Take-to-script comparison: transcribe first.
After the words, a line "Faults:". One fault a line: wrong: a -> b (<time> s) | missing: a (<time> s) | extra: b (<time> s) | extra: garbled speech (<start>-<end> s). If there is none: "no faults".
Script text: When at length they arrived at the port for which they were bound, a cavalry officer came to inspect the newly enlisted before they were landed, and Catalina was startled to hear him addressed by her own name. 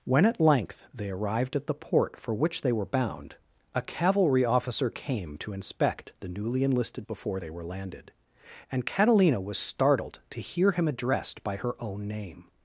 When at length they arrived at the port for which they were bound, a cavalry officer came to inspect the newly enlisted before they were landed, and Catalina was startled to hear him addressed by her own name.
Faults:
no faults